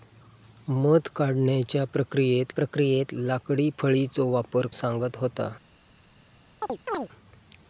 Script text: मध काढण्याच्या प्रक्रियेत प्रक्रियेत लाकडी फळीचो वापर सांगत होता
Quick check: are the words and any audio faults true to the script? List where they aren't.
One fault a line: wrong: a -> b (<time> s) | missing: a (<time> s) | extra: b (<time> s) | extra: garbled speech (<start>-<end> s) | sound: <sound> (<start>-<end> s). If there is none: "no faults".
sound: chirp (6.6-7.1 s)